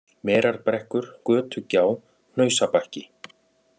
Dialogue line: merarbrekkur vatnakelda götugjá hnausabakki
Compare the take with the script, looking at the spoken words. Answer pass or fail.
fail